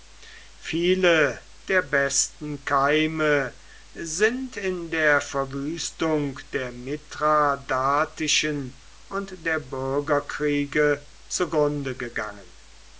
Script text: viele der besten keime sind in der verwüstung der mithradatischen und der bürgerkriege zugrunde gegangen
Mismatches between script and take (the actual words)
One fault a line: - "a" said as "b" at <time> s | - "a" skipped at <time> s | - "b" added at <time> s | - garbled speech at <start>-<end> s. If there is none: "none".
none